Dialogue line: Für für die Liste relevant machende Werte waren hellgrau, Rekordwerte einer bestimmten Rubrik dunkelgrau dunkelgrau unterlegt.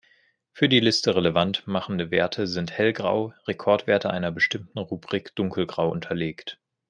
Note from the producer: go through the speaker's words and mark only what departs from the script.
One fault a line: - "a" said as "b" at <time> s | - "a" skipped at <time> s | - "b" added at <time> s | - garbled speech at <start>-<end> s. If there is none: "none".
- "für" skipped at 0.7 s
- "waren" said as "sind" at 2.5 s
- "dunkelgrau" skipped at 5.9 s